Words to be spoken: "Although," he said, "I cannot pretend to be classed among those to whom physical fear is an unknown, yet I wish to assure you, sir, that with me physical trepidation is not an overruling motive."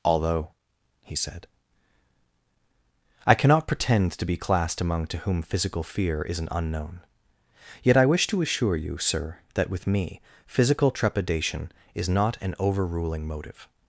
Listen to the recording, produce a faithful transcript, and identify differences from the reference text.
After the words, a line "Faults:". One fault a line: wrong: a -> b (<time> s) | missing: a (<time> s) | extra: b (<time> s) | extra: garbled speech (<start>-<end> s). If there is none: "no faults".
"Although," he said, "I cannot pretend to be classed among to whom physical fear is an unknown, yet I wish to assure you, sir, that with me physical trepidation is not an overruling motive."
Faults:
missing: those (5.1 s)